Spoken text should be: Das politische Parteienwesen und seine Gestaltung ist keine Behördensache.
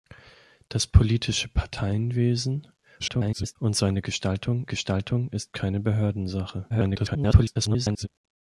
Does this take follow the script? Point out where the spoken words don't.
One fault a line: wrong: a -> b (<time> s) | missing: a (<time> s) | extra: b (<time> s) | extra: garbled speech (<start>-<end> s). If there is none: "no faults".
extra: garbled speech (3.0-3.6 s)
extra: Gestaltung (4.7 s)
extra: garbled speech (6.7-8.1 s)